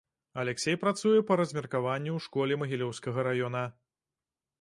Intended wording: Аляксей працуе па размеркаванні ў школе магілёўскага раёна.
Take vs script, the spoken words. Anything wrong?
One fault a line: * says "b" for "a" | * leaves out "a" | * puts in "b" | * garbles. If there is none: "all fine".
all fine